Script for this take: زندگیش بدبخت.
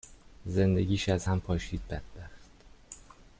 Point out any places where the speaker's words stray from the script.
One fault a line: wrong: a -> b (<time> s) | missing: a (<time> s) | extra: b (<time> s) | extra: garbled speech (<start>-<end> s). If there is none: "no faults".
extra: از هم پاشید (1.1 s)